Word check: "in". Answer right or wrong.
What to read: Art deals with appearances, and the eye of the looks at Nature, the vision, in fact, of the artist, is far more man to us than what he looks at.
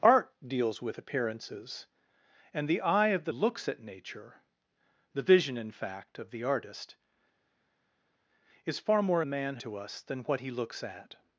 right